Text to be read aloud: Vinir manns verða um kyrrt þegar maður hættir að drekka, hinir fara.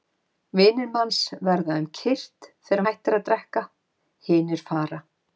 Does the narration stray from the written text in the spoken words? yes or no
yes